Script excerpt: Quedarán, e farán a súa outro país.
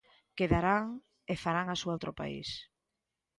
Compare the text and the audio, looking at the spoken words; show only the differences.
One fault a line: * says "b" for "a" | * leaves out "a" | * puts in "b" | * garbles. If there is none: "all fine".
all fine